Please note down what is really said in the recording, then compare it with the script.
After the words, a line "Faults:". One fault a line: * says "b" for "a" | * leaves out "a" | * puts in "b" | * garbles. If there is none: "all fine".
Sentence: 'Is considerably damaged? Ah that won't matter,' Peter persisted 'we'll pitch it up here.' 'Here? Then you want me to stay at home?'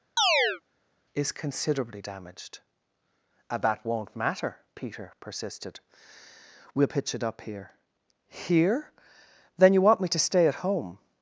'Is considerably damaged? Ah that won't matter,' Peter persisted 'we'll pitch it up here.' 'Here? Then you want me to stay at home?'
Faults:
all fine